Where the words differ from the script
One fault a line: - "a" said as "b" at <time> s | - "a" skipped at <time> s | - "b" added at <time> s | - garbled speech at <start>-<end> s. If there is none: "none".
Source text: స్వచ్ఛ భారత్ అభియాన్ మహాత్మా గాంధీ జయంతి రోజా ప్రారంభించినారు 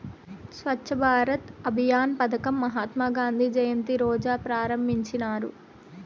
- "పదకం" added at 2.2 s